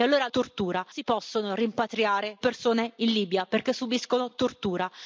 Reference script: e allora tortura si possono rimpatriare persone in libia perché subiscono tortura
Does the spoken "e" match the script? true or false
true